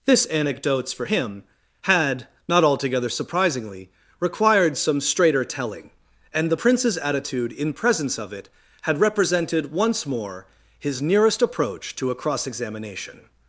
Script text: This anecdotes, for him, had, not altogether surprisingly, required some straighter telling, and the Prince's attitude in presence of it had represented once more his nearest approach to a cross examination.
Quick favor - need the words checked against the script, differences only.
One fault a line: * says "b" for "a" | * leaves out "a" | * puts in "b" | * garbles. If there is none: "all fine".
all fine